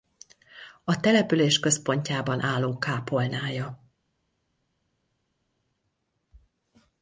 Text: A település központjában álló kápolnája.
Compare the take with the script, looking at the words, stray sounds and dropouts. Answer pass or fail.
pass